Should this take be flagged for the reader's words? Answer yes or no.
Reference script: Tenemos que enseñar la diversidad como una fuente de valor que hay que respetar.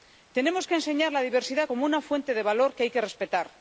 no